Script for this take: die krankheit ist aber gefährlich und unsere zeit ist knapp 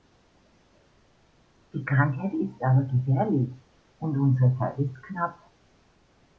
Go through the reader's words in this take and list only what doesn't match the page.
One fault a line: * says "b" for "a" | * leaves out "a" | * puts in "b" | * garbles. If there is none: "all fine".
all fine